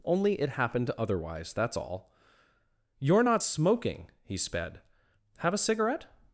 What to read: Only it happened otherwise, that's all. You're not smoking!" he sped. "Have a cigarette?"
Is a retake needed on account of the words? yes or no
no